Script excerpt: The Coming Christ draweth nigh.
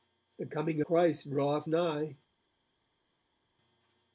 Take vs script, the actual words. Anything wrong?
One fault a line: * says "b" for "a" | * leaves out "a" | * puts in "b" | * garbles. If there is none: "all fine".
all fine